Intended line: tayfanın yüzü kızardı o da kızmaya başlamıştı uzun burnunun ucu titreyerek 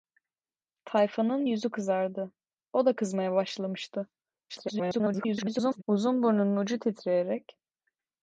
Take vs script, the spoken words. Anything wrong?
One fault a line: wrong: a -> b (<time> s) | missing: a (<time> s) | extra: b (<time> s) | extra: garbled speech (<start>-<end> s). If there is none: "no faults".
extra: garbled speech (4.5-5.8 s)